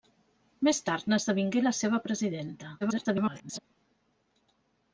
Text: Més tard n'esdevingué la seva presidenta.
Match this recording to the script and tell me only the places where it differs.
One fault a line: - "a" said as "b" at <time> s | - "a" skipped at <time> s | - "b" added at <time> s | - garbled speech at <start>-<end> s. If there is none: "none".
- garbled speech at 2.8-3.6 s